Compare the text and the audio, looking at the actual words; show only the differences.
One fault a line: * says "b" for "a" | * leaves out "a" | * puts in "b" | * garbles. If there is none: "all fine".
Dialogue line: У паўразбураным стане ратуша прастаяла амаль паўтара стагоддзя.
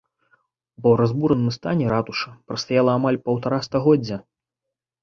all fine